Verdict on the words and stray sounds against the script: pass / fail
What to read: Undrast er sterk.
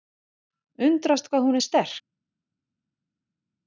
fail